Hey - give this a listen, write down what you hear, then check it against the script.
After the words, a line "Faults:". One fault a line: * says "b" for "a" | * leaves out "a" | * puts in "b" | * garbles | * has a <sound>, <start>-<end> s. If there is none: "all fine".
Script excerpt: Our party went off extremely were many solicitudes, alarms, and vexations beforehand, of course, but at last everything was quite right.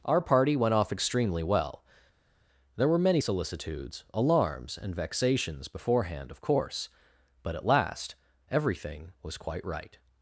Our party went off extremely well. There were many solicitudes, alarms, and vexations beforehand, of course, but at last everything was quite right.
Faults:
* puts in "well There"